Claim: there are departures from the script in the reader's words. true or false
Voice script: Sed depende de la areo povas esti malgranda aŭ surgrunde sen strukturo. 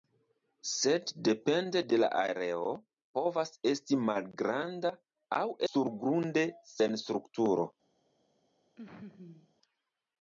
false